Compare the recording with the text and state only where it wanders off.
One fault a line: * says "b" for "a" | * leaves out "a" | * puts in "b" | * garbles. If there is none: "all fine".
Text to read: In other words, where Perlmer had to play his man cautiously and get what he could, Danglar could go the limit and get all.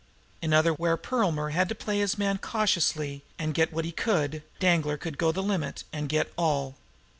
* leaves out "words"